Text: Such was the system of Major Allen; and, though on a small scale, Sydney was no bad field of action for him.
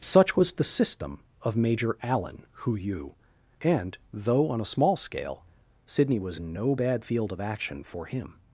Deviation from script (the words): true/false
true